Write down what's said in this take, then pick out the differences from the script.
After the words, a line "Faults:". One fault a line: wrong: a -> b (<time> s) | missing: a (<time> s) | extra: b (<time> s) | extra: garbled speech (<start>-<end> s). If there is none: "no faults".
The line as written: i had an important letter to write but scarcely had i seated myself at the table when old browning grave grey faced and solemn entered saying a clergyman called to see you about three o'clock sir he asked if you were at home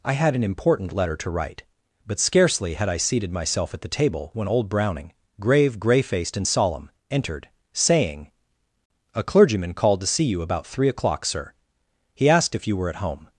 i had an important letter to write but scarcely had i seated myself at the table when old browning grave grey faced and solemn entered saying a clergyman called to see you about three o'clock sir he asked if you were at home
Faults:
no faults